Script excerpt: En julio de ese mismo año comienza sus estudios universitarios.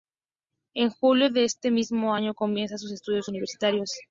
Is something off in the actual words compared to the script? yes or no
no